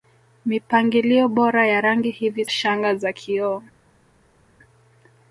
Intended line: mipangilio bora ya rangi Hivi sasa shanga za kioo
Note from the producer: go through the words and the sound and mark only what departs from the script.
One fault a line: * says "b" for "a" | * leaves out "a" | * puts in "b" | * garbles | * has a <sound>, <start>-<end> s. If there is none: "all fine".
* leaves out "sasa"